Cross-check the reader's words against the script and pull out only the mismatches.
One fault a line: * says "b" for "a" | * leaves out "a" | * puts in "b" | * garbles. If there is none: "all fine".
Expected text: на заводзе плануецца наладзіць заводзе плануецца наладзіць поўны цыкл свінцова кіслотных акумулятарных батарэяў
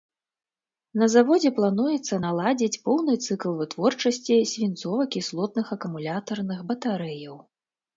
* leaves out "заводзе плануецца наладзіць"
* puts in "вытворчасці"